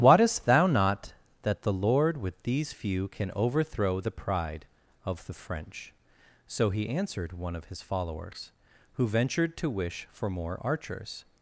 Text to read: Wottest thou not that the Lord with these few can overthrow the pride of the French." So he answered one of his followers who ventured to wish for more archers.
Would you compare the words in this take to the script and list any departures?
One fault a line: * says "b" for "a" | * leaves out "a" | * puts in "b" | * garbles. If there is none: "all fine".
all fine